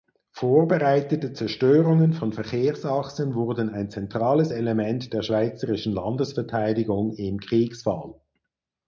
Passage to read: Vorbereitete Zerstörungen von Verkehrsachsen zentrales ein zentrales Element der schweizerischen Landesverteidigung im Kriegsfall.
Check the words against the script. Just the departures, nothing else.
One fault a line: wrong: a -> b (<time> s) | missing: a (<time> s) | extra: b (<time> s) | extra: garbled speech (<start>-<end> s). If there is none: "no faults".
wrong: zentrales -> wurden (3.3 s)